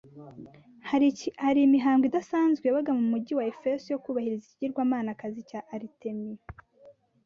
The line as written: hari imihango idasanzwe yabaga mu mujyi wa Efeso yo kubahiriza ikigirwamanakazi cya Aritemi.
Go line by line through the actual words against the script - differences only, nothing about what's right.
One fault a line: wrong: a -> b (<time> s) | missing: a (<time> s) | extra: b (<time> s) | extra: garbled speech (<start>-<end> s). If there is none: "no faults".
no faults